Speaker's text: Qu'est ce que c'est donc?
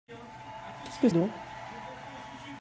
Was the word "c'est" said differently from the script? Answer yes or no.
yes